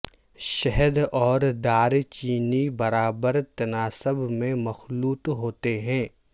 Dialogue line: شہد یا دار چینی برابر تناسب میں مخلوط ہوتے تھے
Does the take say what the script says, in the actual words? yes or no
no